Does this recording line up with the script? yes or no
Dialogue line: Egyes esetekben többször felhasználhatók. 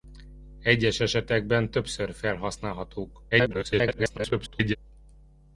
no